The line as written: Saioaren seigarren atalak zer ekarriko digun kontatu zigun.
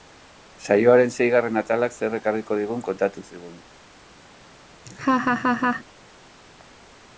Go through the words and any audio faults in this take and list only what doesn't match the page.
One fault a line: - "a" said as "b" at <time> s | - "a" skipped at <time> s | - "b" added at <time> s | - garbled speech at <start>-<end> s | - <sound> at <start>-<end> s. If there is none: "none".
- laugh at 4.9-5.8 s